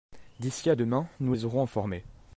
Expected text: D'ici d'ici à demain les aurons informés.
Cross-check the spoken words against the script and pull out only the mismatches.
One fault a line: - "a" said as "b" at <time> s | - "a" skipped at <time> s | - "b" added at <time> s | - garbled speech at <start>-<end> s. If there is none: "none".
- "d'ici" skipped at 0.7 s
- "nous" added at 1.2 s